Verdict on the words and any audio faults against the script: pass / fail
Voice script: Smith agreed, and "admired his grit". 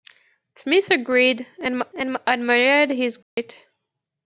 fail